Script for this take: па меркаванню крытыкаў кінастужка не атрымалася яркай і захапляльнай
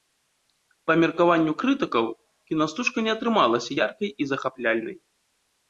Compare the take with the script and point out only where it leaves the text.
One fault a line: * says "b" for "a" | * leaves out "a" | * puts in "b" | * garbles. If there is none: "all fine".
all fine